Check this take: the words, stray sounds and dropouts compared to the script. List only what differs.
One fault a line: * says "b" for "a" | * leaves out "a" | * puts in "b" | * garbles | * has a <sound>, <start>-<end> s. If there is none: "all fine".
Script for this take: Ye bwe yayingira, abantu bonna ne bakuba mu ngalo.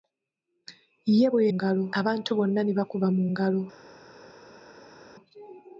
* says "ngalo" for "yayingira"